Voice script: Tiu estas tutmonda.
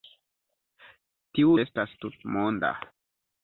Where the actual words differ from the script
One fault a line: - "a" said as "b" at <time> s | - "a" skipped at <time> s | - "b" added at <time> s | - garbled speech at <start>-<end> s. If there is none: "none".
none